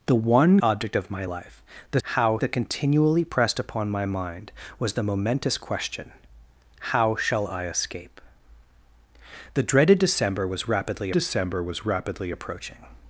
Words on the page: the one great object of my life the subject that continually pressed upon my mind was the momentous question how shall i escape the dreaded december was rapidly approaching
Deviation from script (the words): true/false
true